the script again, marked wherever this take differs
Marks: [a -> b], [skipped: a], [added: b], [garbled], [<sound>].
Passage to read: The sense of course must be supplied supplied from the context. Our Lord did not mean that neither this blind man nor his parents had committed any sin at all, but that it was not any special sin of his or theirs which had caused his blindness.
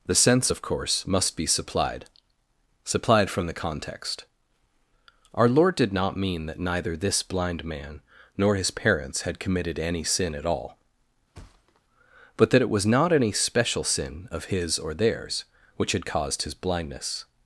The sense of course must be supplied supplied from the context. Our Lord did not mean that neither this blind man nor his parents had committed any sin at all, [thud] but that it was not any special sin of his or theirs which had caused his blindness.